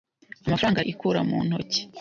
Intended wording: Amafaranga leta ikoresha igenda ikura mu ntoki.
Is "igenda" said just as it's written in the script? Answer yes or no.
no